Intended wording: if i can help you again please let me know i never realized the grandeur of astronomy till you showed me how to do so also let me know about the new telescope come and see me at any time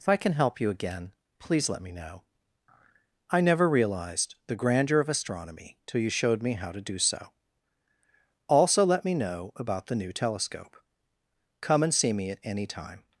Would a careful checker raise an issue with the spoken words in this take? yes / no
no